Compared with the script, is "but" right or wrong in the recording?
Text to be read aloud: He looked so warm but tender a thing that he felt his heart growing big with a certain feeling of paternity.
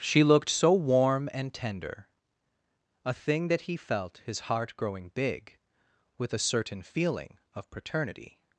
wrong